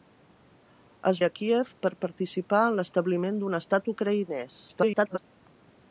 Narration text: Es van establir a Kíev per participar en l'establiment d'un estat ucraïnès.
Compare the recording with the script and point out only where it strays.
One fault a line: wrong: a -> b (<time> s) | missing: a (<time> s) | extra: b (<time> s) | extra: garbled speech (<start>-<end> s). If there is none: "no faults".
missing: van establir (1.2 s)
extra: garbled speech (4.7-5.2 s)